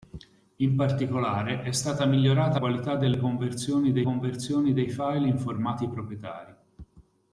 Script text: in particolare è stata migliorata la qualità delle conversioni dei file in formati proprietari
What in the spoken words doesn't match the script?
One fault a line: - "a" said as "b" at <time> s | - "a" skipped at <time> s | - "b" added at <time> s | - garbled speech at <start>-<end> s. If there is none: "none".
- "la" skipped at 2.6 s
- "conversioni dei" added at 4.0 s